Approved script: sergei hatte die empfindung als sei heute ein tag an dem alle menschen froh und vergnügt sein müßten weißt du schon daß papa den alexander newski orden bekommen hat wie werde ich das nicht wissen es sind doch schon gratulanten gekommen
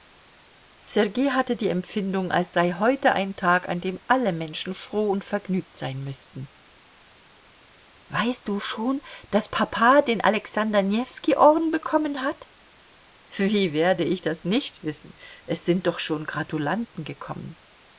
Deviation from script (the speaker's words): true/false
false